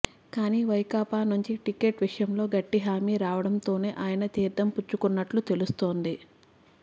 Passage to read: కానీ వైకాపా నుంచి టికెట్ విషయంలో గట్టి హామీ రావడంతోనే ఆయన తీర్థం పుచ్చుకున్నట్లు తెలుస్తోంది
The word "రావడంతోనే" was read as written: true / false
true